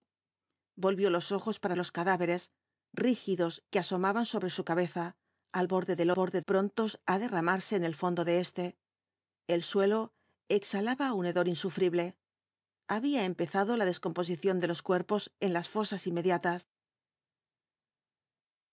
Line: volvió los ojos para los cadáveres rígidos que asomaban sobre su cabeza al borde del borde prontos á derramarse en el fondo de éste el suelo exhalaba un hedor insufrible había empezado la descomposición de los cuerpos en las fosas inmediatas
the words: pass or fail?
pass